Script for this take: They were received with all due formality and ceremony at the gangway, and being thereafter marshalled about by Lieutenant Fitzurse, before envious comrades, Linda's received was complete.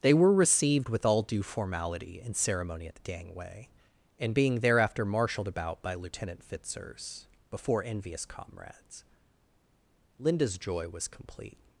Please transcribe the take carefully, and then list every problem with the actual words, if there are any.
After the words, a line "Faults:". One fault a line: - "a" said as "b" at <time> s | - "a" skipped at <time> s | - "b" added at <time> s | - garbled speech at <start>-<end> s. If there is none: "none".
They were received with all due formality and ceremony at the gangway, and being thereafter marshalled about by Lieutenant Fitzurse, before envious comrades, Linda's joy was complete.
Faults:
- "received" said as "joy" at 10.6 s